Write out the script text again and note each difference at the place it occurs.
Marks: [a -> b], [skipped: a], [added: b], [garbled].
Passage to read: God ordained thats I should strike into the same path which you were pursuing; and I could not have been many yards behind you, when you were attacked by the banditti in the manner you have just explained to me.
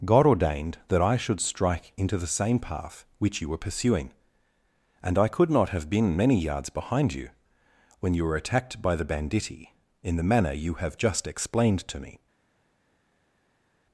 God ordained [thats -> that] I should strike into the same path which you were pursuing; and I could not have been many yards behind you, when you were attacked by the banditti in the manner you have just explained to me.